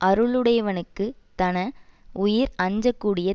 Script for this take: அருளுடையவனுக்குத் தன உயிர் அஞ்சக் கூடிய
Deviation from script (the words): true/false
false